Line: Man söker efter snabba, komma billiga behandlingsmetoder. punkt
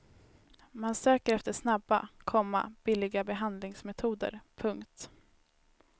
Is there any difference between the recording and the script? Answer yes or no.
no